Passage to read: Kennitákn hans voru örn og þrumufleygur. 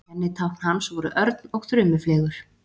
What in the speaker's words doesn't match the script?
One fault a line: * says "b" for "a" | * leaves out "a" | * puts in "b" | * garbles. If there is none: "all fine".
all fine